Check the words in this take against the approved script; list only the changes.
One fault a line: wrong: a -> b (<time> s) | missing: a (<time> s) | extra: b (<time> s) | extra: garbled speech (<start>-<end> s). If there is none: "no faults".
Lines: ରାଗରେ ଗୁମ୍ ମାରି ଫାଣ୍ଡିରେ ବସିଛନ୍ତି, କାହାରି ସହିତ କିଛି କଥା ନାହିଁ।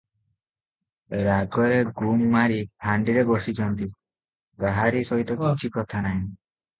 no faults